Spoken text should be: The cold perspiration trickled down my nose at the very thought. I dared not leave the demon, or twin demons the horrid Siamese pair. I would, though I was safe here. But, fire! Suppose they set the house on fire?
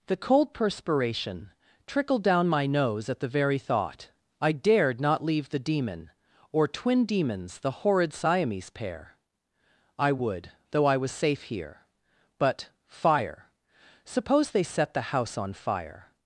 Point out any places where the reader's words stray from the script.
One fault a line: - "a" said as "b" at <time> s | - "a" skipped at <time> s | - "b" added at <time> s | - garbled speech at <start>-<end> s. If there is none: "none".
none